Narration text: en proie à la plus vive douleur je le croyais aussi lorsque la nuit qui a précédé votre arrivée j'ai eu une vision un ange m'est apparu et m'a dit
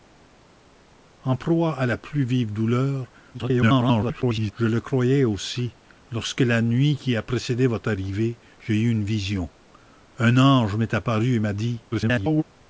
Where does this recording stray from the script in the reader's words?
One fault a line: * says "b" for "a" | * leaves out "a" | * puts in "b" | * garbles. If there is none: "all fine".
* garbles
* garbles